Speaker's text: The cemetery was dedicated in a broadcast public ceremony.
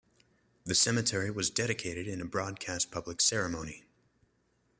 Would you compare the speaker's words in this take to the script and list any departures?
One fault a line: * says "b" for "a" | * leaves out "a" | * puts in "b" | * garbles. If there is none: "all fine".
all fine